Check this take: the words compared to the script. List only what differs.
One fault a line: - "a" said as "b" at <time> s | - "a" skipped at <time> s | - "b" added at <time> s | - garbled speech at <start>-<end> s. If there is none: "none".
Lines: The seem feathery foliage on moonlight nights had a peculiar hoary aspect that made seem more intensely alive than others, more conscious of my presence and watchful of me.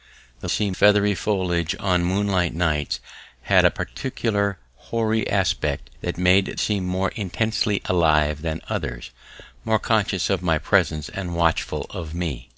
none